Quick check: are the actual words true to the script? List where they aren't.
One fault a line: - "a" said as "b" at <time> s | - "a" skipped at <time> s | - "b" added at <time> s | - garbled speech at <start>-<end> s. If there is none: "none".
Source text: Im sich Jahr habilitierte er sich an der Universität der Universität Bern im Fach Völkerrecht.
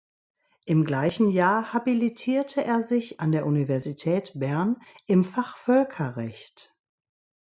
- "sich" said as "gleichen" at 0.8 s
- "der Universität" skipped at 4.3 s